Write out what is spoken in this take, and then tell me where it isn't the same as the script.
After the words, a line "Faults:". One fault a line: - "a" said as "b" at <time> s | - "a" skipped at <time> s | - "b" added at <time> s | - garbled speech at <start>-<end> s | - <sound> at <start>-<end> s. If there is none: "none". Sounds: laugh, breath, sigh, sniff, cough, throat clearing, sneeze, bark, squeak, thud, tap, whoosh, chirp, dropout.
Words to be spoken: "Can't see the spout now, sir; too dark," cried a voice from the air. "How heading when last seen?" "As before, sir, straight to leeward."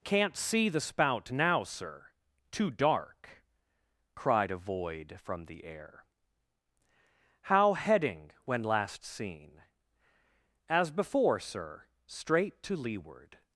"Can't see the spout now, sir; too dark," cried a void from the air. "How heading when last seen?" "As before, sir, straight to leeward."
Faults:
- "voice" said as "void" at 4.6 s